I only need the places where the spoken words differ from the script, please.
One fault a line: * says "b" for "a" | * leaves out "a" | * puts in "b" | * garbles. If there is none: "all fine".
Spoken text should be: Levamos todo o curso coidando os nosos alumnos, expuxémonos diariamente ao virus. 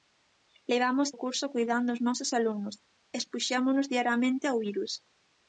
* leaves out "todo"